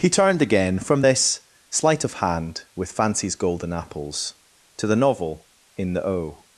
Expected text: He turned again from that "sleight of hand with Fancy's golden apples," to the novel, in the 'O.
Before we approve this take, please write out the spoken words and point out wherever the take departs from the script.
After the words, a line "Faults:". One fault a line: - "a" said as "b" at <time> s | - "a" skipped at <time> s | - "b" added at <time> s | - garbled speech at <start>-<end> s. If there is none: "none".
He turned again from this "sleight of hand with Fancy's golden apples," to the novel, in the 'O.
Faults:
- "that" said as "this" at 1.0 s